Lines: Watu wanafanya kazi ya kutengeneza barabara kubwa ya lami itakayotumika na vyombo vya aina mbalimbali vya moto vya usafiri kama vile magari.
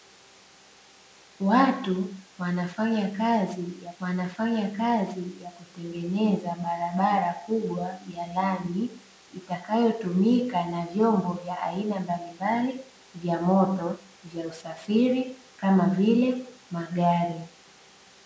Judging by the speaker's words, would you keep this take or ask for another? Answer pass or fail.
fail